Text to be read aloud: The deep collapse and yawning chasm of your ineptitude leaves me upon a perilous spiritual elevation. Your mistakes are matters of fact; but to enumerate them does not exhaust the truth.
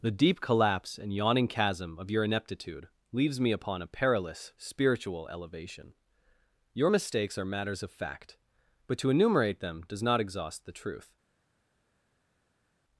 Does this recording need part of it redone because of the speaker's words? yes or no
no